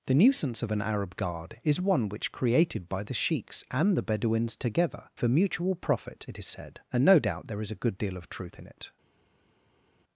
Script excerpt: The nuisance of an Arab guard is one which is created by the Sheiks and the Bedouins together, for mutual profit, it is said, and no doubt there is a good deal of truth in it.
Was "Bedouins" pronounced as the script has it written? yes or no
yes